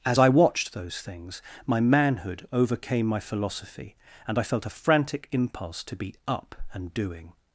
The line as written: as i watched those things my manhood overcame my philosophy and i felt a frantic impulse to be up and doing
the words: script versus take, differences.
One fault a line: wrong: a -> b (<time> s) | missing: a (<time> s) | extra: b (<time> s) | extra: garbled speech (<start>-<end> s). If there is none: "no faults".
no faults